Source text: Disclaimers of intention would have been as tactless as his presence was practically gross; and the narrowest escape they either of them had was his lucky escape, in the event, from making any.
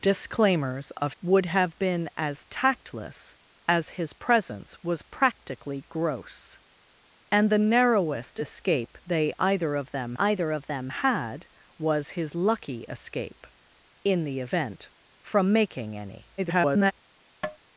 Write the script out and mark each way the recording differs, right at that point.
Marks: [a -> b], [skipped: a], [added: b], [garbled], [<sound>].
Disclaimers of [skipped: intention] would have been as tactless as his presence was practically gross; and the narrowest escape they either of them [added: either of them] had was his lucky escape, in the event, from making any. [garbled] [tap]